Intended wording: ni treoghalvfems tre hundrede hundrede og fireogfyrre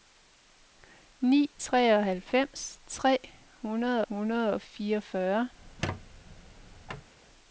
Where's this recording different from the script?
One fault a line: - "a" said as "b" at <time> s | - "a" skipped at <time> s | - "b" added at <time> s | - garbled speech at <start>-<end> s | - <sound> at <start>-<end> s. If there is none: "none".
- squeak at 5.6-7.1 s